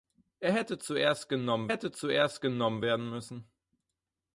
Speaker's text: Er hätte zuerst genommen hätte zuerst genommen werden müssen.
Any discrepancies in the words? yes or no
no